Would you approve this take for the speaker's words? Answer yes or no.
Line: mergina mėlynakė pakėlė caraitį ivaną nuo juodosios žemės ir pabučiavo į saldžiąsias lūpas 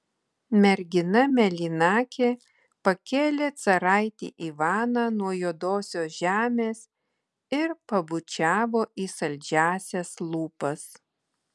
yes